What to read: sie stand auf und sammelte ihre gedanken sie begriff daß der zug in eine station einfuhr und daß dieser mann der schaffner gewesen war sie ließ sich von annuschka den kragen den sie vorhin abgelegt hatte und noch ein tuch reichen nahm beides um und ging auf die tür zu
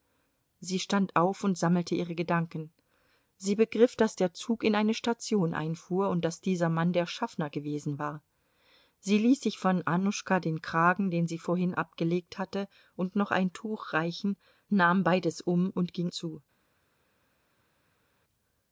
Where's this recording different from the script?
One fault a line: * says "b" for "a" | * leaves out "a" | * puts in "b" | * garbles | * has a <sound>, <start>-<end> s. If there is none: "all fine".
* leaves out "auf die tür"